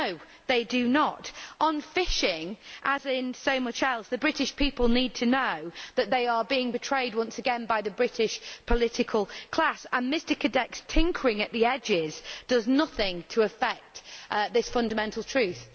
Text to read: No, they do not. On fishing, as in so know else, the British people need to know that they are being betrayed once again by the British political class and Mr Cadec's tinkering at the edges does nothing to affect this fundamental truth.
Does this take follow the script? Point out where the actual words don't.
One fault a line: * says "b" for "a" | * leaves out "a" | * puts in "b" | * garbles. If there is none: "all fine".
* says "much" for "know"